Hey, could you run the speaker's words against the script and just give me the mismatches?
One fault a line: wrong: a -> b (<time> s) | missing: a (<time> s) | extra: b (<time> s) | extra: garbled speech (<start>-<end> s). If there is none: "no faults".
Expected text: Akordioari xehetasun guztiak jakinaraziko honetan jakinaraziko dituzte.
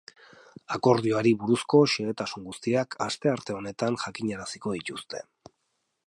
extra: buruzko (1.4 s)
wrong: jakinaraziko -> astearte (3.0 s)